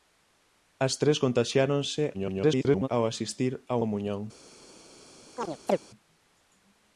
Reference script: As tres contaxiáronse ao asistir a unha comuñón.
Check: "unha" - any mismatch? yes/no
yes